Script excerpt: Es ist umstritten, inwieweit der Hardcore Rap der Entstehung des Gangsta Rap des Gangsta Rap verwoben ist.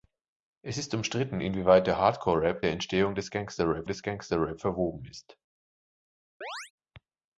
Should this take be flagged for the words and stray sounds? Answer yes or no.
yes